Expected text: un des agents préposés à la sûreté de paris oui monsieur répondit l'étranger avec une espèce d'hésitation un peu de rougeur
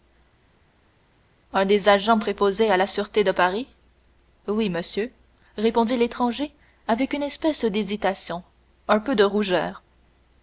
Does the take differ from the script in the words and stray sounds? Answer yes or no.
no